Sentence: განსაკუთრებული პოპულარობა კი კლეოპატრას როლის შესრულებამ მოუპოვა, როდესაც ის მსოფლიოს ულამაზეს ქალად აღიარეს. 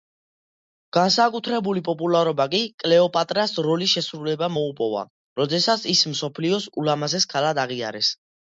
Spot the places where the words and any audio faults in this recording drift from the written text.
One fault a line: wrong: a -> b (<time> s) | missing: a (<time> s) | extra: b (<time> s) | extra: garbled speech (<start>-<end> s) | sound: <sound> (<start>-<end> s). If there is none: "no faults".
no faults